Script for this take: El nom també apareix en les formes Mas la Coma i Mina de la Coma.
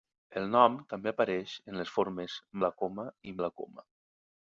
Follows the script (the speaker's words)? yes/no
no